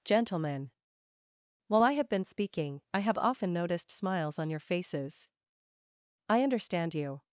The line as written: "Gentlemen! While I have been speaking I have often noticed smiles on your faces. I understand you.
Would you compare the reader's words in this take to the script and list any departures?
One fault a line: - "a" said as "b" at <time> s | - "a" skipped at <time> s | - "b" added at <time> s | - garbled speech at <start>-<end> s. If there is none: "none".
none